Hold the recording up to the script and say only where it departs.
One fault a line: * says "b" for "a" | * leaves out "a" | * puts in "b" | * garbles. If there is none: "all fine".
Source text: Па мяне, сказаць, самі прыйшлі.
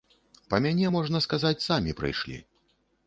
* puts in "можна"